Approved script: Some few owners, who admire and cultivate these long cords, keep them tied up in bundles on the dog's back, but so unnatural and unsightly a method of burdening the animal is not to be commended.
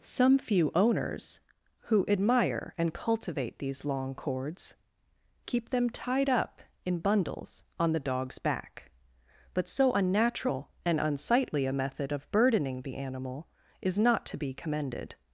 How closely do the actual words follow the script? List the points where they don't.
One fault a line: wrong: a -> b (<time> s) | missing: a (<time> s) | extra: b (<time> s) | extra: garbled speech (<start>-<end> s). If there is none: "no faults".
no faults